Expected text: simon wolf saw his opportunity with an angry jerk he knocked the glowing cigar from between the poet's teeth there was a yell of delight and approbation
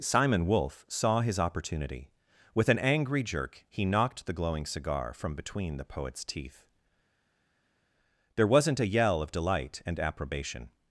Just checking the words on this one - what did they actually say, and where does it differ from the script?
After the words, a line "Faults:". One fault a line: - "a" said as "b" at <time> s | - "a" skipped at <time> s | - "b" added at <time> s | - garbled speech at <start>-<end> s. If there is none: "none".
simon wolf saw his opportunity with an angry jerk he knocked the glowing cigar from between the poet's teeth there wasn't a yell of delight and approbation
Faults:
- "was" said as "wasn't" at 8.5 s